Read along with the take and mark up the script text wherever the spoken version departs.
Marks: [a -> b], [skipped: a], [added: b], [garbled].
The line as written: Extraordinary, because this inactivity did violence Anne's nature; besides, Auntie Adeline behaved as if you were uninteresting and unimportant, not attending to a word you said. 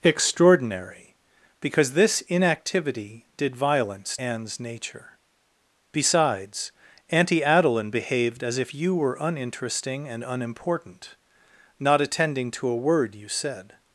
Extraordinary, because this inactivity did violence Anne's nature; besides, Auntie Adeline behaved as if you were uninteresting and unimportant, not attending to a word you said.